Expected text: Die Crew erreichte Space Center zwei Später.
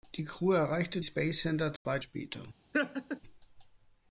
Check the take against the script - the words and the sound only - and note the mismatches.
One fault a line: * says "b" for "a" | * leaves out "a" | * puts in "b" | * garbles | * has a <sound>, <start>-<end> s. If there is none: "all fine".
* has a dropout, 1.8-1.9 s
* has a laugh, 2.7-3.2 s